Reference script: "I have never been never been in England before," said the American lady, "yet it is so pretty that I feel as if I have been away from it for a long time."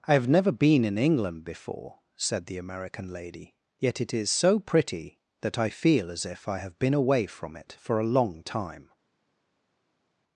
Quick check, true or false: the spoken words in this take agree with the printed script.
false